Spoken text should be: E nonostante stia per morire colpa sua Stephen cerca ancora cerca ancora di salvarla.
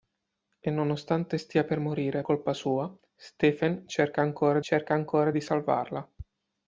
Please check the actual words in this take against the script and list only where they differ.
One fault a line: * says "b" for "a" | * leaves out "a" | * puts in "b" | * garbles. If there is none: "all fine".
all fine